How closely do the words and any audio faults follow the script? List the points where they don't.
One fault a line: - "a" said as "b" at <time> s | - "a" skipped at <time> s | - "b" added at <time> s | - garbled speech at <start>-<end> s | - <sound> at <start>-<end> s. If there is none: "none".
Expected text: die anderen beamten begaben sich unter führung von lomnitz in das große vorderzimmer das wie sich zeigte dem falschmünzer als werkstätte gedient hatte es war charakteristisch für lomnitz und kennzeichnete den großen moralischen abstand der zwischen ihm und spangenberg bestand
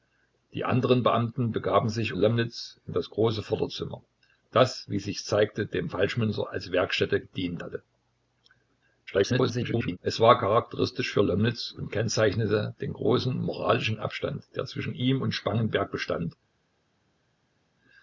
- "unter führung von" skipped at 2.1 s
- garbled speech at 9.1-10.0 s